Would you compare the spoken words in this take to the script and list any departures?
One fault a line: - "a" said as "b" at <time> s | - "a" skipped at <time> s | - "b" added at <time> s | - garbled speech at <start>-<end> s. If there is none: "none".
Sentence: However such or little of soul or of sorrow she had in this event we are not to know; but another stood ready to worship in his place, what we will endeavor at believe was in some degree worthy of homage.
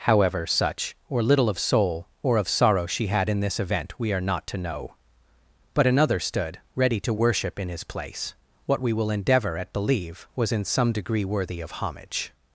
none